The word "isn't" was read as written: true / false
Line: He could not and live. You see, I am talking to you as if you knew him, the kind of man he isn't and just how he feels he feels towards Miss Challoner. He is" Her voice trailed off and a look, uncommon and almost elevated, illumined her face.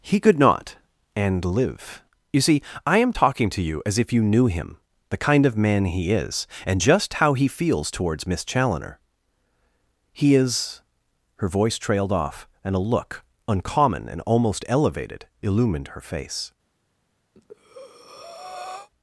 false